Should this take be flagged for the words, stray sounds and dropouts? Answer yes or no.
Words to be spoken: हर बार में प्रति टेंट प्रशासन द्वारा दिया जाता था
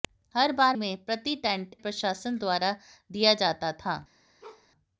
yes